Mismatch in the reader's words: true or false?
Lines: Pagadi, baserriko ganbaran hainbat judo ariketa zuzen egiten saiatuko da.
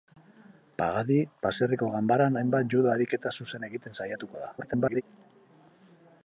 true